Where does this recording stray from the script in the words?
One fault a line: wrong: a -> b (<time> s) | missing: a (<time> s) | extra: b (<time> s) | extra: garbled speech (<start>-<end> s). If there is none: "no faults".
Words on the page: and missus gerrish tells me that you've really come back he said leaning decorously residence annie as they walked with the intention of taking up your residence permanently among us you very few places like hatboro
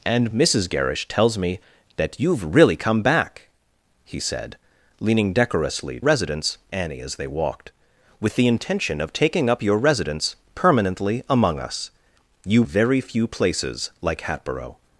no faults